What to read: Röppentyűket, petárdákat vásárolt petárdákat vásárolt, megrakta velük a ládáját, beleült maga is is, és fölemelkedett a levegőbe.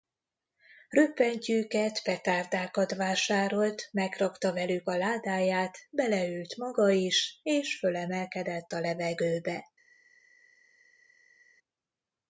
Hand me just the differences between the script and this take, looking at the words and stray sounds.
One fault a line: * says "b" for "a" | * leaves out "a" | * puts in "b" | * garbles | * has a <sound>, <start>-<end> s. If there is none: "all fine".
* leaves out "petárdákat vásárolt"
* leaves out "is"